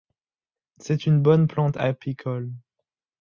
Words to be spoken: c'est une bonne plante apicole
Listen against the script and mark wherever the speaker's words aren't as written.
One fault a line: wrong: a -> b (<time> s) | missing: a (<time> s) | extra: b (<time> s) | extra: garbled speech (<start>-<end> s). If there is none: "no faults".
no faults